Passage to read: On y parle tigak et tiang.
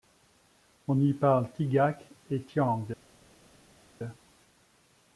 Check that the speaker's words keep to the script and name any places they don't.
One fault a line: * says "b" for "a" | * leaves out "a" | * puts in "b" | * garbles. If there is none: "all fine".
all fine